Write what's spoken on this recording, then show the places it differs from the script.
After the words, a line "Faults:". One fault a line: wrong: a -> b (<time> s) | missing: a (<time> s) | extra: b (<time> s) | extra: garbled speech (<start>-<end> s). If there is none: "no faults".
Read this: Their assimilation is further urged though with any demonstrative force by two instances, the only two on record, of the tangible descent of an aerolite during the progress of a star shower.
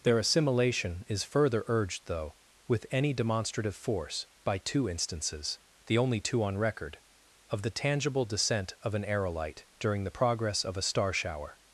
Their assimilation is further urged though with any demonstrative force by two instances, the only two on record, of the tangible descent of an aerolite during the progress of a star shower.
Faults:
no faults